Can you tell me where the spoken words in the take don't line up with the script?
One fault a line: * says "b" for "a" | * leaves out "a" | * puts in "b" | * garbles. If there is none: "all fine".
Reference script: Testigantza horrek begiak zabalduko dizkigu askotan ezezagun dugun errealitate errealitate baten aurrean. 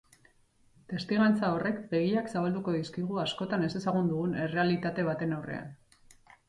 * leaves out "errealitate"